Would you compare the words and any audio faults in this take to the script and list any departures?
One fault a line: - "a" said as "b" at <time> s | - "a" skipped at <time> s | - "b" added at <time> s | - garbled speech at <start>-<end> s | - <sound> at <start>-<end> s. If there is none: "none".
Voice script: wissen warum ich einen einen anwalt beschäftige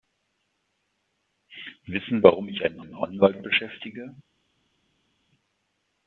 none